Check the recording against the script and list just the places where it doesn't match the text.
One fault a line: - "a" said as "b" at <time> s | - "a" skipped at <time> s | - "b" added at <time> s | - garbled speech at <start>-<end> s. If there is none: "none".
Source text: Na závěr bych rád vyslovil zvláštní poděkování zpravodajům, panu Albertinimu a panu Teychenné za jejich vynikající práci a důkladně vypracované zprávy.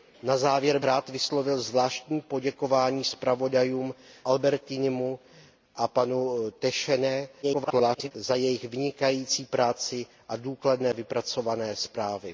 - "bych" skipped at 0.8 s
- "panu" skipped at 3.9 s
- garbled speech at 7.4-8.1 s